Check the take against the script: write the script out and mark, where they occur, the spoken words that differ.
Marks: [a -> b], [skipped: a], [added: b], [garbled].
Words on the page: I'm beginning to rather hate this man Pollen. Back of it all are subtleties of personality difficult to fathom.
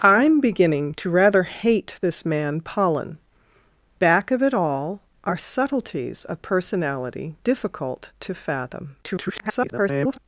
I'm beginning to rather hate this man Pollen. Back of it all are subtleties of personality difficult to fathom. [garbled]